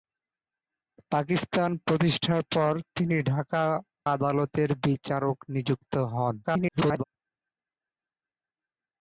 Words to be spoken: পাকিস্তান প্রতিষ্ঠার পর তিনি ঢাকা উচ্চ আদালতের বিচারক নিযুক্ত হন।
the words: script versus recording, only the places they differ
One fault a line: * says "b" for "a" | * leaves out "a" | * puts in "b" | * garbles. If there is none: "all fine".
* leaves out "উচ্চ"
* garbles